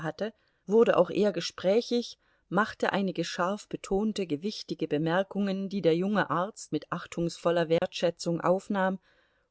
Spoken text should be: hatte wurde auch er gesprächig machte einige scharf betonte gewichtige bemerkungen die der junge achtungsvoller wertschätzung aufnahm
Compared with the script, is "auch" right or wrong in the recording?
right